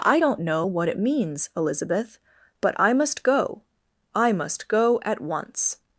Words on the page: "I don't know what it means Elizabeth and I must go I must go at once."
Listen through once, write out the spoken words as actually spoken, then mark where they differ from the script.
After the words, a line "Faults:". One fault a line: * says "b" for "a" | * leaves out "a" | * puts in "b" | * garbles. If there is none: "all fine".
"I don't know what it means Elizabeth but I must go I must go at once."
Faults:
* says "but" for "and"